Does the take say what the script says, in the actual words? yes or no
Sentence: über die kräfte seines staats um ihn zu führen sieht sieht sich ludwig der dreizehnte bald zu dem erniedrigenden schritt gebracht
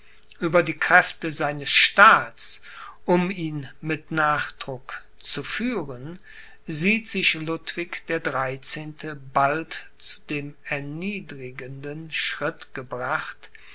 no